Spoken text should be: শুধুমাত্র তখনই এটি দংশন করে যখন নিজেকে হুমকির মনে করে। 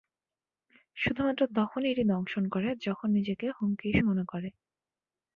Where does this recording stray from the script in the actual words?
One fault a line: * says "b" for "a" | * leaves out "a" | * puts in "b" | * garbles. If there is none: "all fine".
all fine